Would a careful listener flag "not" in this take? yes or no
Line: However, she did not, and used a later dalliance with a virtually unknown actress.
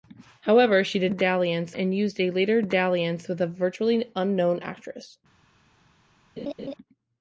yes